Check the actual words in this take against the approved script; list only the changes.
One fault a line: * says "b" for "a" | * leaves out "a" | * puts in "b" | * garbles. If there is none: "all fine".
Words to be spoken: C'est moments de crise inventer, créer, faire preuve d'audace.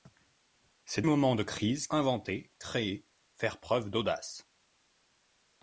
all fine